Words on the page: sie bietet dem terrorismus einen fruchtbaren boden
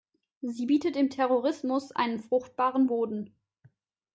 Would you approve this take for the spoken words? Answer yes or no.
yes